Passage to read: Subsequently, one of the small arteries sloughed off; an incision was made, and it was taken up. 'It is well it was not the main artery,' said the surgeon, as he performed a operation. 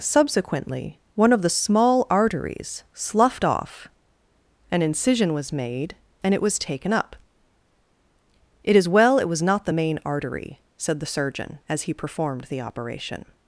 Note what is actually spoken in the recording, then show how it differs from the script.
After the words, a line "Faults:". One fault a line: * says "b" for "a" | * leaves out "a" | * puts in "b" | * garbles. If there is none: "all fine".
Subsequently, one of the small arteries sloughed off; an incision was made, and it was taken up. 'It is well it was not the main artery,' said the surgeon, as he performed the operation.
Faults:
* says "the" for "a"